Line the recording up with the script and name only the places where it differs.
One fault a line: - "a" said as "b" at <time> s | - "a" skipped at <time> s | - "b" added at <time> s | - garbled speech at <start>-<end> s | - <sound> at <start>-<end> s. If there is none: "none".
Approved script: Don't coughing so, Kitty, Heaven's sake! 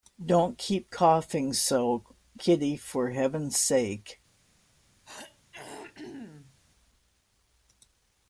- "keep" added at 0.6 s
- "for" added at 2.8 s
- throat clearing at 5.0-6.6 s